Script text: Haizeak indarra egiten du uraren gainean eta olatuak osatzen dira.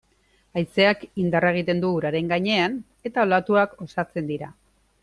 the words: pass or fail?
pass